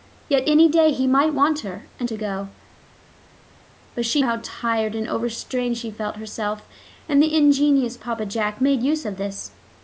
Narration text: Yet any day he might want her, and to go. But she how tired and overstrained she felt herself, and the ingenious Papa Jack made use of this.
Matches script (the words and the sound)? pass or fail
pass